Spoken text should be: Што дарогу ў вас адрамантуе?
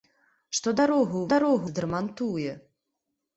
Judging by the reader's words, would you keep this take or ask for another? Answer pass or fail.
fail